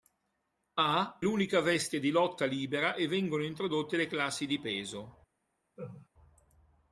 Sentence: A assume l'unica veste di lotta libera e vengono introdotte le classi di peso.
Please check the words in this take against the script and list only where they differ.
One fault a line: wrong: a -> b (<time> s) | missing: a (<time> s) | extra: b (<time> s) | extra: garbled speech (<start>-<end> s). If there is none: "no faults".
missing: assume (1.2 s)